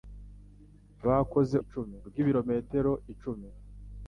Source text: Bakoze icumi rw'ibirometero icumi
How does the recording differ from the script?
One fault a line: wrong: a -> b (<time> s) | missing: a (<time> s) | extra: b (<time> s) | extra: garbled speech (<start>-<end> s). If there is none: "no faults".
no faults